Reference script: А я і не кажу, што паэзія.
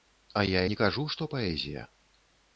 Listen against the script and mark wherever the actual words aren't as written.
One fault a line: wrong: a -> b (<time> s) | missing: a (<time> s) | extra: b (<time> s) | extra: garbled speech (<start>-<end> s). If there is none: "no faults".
missing: і (0.6 s)